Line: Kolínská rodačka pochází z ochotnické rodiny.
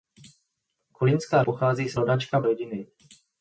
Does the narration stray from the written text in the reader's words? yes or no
yes